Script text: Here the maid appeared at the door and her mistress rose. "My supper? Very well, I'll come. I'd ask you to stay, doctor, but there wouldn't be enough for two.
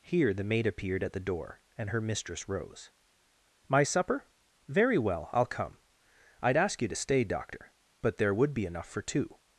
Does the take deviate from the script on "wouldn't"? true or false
true